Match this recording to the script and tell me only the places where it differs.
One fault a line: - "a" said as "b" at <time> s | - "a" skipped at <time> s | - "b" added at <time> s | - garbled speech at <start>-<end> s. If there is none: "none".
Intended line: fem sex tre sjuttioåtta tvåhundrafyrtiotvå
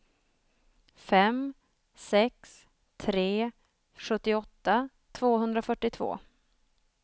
none